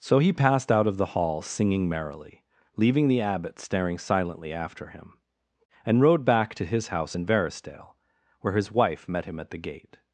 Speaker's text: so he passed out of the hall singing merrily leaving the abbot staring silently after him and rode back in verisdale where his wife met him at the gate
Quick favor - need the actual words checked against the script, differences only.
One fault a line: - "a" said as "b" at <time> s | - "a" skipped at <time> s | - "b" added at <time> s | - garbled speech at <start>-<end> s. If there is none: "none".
- "to his house" added at 6.5 s